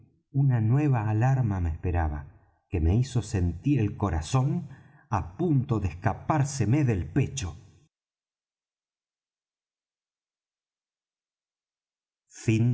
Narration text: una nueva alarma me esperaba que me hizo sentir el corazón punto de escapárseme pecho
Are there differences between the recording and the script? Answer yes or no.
yes